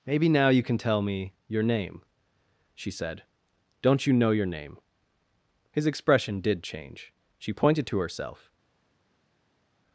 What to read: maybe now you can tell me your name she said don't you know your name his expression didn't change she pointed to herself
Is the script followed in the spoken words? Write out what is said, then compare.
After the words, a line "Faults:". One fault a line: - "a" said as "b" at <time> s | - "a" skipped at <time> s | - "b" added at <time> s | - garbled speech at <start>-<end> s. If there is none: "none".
maybe now you can tell me your name she said don't you know your name his expression did change she pointed to herself
Faults:
- "didn't" said as "did" at 6.4 s